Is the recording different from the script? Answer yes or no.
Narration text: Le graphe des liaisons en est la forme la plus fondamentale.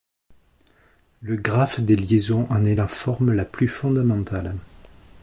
no